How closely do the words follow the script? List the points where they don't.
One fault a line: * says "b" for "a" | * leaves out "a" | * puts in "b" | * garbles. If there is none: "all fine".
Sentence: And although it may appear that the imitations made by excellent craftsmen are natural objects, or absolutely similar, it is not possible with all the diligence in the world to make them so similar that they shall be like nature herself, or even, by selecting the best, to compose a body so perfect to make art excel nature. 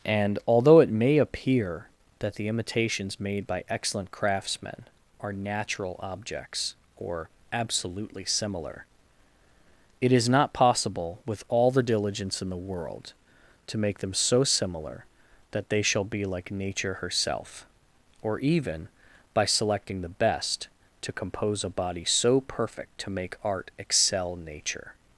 all fine